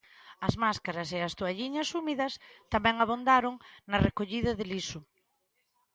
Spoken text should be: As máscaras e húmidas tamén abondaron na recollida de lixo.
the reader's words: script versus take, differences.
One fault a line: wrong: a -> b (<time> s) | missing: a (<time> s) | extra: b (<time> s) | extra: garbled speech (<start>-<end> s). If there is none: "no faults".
extra: as toalliñas (1.3 s)